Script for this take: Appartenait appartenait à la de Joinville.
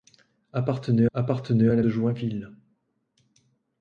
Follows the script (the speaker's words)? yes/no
yes